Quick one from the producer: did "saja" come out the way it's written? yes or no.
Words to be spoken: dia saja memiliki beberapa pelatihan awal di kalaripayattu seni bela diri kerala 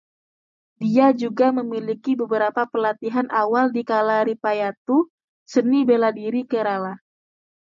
no